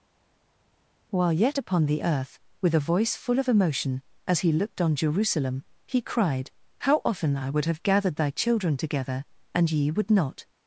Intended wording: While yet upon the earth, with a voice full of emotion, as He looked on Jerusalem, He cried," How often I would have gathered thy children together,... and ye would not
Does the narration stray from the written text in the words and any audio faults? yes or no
no